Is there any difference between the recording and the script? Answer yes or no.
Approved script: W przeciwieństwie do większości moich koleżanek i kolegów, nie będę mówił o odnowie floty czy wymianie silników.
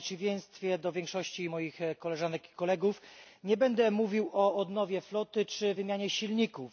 no